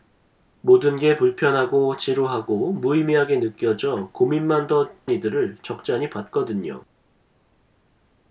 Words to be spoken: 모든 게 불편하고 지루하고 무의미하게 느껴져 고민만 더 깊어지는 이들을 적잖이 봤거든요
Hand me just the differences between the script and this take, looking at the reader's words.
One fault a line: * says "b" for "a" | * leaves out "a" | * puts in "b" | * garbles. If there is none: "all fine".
* leaves out "깊어지는"